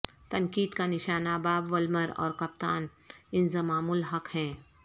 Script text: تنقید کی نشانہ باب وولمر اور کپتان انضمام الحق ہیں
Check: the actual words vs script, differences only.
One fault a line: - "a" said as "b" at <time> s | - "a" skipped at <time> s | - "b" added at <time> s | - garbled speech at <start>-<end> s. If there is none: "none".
- "کی" said as "کا" at 0.7 s